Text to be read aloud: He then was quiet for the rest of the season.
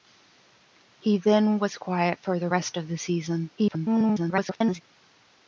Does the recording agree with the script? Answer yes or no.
no